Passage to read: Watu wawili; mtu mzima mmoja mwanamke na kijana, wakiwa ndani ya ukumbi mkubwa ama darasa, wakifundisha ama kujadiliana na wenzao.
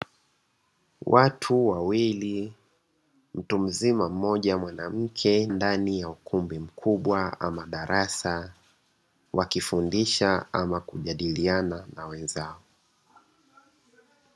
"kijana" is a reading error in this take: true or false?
true